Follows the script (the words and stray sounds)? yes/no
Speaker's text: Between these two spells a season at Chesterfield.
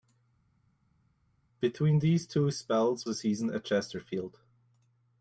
yes